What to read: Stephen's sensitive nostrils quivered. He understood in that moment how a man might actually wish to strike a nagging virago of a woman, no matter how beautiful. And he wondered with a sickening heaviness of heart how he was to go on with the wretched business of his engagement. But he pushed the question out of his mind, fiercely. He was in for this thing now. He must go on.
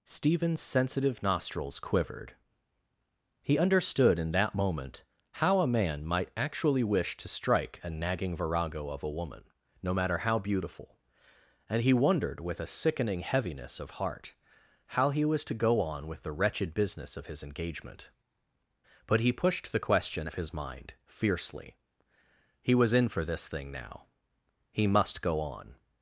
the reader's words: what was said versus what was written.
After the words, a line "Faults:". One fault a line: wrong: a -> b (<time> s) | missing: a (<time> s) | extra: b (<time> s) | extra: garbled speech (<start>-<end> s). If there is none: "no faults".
Stephen's sensitive nostrils quivered. He understood in that moment how a man might actually wish to strike a nagging virago of a woman, no matter how beautiful. And he wondered with a sickening heaviness of heart how he was to go on with the wretched business of his engagement. But he pushed the question of his mind, fiercely. He was in for this thing now. He must go on.
Faults:
missing: out (20.3 s)